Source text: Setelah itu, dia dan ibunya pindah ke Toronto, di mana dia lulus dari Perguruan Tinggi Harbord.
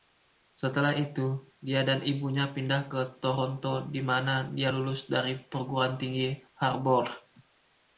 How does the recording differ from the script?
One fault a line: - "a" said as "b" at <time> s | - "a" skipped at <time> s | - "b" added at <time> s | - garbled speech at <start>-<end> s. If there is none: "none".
none